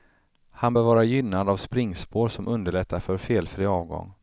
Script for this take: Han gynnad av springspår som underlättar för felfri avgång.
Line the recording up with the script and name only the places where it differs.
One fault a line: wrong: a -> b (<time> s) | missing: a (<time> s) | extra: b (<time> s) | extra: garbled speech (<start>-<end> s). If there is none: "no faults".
extra: bör vara (0.7 s)